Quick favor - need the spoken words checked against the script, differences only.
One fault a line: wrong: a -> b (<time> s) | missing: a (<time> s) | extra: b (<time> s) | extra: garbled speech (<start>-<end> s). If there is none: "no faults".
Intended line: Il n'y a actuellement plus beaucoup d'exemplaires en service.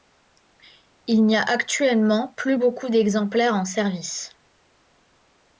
no faults